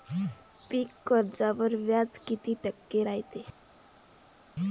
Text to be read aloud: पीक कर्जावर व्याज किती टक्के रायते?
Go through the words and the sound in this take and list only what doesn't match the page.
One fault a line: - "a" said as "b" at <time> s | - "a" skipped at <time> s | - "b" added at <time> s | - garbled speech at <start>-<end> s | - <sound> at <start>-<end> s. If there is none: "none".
none